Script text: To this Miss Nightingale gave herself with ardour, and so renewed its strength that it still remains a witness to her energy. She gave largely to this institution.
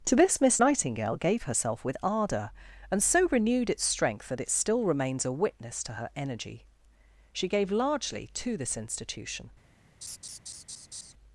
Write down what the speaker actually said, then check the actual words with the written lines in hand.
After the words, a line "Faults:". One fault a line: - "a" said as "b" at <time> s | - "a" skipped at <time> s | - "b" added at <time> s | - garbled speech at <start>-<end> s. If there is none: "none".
To this Miss Nightingale gave herself with ardour, and so renewed its strength that it still remains a witness to her energy. She gave largely to this institution.
Faults:
none